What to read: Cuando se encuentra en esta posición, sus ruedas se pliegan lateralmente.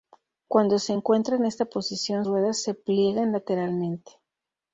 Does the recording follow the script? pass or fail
fail